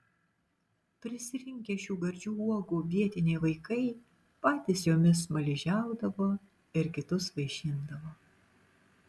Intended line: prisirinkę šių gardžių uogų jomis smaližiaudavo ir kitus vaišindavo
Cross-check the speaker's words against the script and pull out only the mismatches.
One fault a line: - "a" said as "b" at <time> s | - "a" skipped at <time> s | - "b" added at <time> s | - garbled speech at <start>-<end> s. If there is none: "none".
- "vietiniai vaikai patys" added at 2.9 s